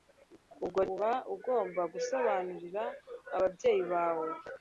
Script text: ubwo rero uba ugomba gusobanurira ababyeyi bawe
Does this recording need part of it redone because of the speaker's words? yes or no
yes